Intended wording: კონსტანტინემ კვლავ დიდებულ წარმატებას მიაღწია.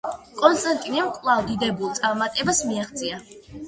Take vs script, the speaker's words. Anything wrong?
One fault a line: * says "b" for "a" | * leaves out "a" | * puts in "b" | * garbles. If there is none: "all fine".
all fine